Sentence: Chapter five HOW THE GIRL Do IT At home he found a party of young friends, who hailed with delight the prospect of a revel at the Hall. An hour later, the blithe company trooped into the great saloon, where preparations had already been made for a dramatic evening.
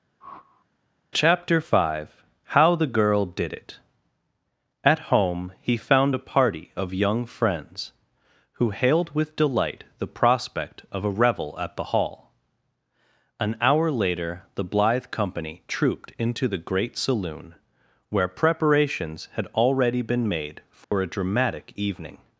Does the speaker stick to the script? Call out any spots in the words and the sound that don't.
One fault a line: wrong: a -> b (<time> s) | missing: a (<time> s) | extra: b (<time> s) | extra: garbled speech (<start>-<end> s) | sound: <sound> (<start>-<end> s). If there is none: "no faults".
sound: whoosh (0.2-0.7 s)
wrong: Do -> DID (3.2 s)
sound: dropout (20.8-20.9 s)